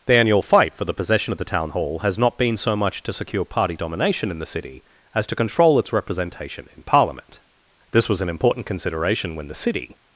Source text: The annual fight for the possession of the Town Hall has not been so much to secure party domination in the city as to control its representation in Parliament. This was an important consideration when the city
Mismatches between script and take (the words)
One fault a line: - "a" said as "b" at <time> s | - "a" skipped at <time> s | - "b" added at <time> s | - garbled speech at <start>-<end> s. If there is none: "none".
none